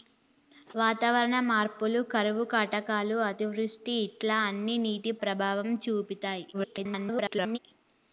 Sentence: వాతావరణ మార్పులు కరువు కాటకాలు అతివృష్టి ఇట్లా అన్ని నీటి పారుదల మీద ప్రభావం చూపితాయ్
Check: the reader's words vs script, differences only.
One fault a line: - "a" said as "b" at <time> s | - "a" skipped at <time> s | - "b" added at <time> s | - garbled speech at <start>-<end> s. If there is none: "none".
- "పారుదల మీద" skipped at 5.1 s
- garbled speech at 6.5-7.6 s